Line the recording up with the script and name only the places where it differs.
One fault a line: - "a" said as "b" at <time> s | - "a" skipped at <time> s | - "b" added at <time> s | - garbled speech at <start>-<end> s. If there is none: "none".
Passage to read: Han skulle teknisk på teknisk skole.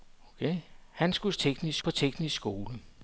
none